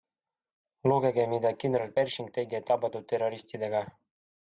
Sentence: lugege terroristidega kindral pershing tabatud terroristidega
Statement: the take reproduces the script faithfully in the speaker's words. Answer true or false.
false